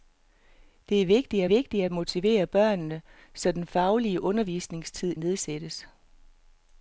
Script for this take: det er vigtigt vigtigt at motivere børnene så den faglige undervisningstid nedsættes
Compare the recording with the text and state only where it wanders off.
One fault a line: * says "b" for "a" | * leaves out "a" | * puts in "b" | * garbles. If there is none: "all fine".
all fine